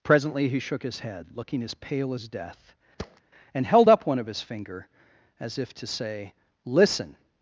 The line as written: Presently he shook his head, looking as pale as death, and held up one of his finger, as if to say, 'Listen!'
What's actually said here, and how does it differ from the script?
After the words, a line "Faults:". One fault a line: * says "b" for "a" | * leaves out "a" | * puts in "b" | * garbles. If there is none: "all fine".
Presently he shook his head, looking as pale as death, and held up one of his finger, as if to say, 'Listen!'
Faults:
all fine